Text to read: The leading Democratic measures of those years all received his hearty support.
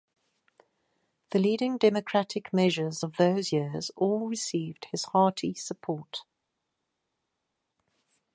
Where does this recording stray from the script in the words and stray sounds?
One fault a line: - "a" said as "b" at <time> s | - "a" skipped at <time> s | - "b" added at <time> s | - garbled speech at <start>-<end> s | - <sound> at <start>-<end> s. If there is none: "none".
none